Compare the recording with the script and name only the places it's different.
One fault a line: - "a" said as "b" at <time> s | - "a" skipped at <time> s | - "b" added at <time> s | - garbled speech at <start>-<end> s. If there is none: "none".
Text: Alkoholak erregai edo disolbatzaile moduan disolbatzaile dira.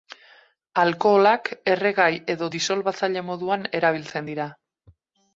- "disolbatzaile" said as "erabiltzen" at 3.8 s